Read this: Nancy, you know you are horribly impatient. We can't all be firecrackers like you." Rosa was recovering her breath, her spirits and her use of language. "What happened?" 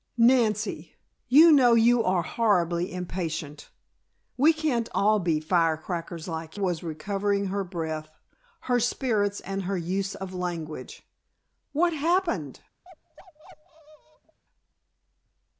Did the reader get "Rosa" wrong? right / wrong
wrong